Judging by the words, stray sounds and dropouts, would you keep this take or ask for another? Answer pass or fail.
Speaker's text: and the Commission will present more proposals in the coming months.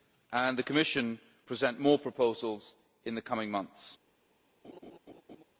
fail